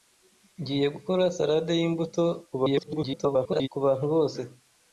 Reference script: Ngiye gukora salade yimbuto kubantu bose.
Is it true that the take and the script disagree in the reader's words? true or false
true